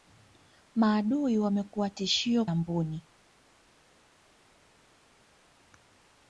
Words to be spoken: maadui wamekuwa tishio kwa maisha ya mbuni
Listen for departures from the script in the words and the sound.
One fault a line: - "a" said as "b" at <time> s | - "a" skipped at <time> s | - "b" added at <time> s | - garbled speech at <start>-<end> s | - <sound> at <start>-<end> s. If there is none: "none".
- "kwa maisha" skipped at 2.5 s